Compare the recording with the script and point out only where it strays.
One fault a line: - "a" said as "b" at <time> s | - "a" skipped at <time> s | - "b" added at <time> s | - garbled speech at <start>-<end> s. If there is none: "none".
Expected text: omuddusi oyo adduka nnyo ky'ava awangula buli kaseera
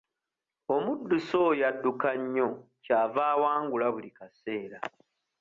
none